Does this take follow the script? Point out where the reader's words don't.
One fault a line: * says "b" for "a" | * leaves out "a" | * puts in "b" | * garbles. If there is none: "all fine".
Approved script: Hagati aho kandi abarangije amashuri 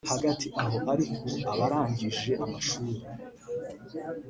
* says "ariko" for "kandi"